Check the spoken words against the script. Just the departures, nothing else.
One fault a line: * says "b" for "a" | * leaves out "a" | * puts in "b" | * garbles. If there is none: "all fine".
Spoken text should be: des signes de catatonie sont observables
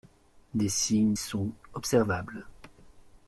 * leaves out "de catatonie"